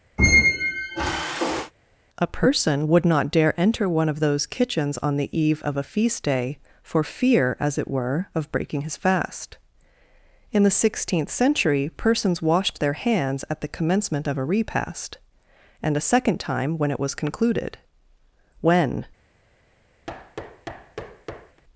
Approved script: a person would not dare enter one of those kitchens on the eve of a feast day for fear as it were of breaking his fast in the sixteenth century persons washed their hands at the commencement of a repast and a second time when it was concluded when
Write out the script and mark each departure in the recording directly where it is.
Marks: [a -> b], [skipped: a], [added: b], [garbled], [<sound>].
[squeak] a person would not dare enter one of those kitchens on the eve of a feast day for fear as it were of breaking his fast in the sixteenth century persons washed their hands at the commencement of a repast and a second time when it was concluded when [thud]